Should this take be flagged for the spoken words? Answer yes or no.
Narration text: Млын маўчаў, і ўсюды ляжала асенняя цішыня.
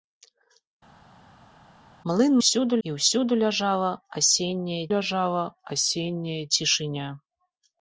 yes